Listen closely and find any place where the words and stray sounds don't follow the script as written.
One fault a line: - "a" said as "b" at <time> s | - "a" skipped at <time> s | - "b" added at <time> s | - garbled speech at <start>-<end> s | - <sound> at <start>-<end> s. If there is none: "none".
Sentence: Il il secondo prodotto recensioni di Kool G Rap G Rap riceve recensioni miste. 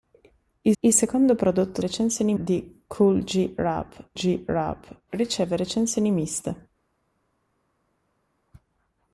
none